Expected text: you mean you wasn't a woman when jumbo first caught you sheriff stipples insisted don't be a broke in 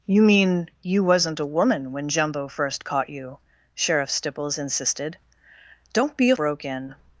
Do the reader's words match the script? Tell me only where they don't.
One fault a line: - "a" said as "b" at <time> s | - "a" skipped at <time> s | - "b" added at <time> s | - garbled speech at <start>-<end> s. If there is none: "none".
none